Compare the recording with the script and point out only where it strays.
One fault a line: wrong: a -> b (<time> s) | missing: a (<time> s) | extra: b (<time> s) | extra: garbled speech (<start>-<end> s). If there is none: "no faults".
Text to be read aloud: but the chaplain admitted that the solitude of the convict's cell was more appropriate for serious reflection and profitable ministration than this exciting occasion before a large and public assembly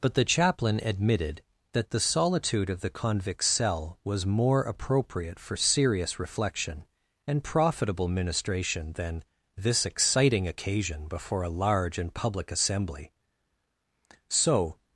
extra: so (14.3 s)